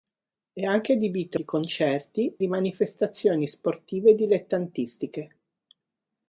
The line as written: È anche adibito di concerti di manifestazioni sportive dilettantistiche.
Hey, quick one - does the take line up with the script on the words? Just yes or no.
yes